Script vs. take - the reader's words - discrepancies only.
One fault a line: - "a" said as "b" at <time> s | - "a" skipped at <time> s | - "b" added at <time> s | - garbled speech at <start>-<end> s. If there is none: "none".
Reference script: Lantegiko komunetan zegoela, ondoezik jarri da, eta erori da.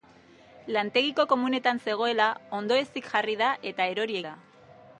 none